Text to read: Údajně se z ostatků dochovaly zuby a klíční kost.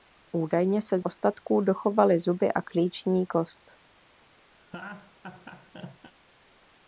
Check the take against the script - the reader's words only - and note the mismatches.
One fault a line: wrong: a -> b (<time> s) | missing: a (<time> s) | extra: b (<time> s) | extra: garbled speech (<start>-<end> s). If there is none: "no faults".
no faults